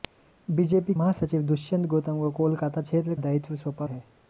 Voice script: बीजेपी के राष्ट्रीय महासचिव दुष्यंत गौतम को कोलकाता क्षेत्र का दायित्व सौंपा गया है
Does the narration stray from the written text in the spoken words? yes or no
yes